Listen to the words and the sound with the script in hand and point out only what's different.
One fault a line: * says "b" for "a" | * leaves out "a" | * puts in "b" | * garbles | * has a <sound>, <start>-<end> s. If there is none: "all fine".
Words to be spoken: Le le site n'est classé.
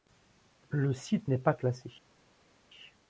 * leaves out "le"
* puts in "pas"